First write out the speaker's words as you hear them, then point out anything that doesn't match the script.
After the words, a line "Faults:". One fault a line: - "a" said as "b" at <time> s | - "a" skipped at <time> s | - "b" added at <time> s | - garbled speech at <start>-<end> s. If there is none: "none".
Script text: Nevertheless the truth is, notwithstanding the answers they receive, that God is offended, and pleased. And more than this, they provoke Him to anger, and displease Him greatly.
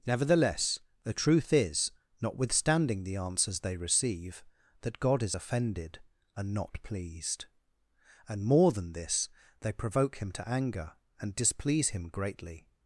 Nevertheless the truth is, notwithstanding the answers they receive, that God is offended, and not pleased. And more than this, they provoke Him to anger, and displease Him greatly.
Faults:
- "not" added at 6.5 s